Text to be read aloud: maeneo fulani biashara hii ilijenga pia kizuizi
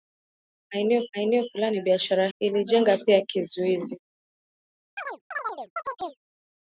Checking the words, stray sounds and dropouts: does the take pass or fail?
fail